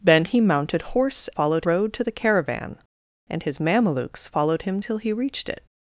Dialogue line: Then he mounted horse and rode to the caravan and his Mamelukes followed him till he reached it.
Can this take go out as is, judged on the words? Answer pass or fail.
fail